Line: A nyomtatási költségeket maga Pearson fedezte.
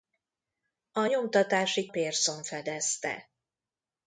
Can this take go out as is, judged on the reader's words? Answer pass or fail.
fail